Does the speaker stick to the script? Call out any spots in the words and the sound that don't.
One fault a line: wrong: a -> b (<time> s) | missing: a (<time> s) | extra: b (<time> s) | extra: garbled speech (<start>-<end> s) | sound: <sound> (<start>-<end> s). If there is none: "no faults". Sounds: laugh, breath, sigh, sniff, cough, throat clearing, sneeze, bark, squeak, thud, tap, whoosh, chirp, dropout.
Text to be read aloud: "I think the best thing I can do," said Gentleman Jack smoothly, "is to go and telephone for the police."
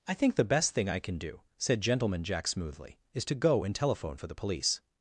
no faults